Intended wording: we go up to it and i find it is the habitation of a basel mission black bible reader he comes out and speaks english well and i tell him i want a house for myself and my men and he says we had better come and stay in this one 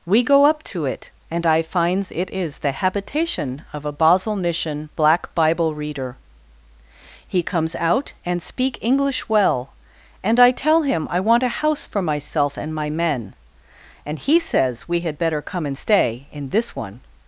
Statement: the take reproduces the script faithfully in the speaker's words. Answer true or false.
false